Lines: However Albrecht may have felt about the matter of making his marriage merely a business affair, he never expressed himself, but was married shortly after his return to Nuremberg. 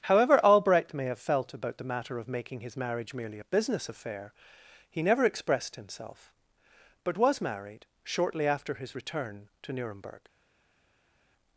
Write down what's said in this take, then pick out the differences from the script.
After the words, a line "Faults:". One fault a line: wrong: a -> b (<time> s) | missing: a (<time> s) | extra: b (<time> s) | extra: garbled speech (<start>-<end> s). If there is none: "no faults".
However Albrecht may have felt about the matter of making his marriage merely a business affair, he never expressed himself, but was married shortly after his return to Nuremberg.
Faults:
no faults